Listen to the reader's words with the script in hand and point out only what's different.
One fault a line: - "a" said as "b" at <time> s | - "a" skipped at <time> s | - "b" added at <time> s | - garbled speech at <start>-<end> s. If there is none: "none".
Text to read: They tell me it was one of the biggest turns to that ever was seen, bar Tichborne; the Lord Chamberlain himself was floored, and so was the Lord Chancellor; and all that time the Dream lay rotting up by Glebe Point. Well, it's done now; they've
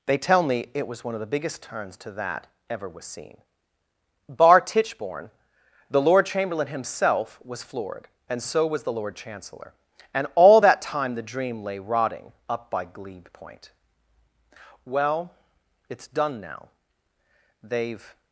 none